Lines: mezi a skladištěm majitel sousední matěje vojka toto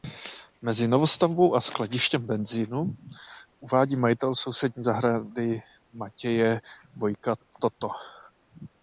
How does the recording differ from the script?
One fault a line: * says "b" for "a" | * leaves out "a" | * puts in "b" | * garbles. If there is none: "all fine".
* puts in "novostavbou"
* puts in "benzínu uvádí"
* puts in "zahrady"